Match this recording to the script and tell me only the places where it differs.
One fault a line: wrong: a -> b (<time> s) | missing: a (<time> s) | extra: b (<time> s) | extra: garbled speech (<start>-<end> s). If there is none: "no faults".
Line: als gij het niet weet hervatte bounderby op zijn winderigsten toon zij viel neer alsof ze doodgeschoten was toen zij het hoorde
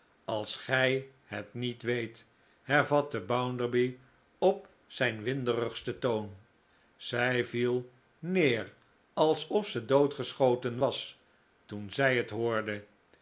no faults